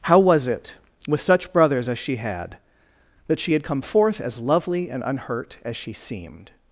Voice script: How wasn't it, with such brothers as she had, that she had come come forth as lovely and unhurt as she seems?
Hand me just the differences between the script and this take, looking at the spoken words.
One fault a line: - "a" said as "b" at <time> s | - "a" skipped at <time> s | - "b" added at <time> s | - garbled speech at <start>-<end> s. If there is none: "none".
- "wasn't" said as "was" at 0.2 s
- "come" skipped at 3.8 s
- "seems" said as "seemed" at 5.9 s